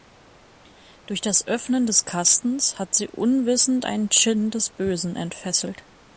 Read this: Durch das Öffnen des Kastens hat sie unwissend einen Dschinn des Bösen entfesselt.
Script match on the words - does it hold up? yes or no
yes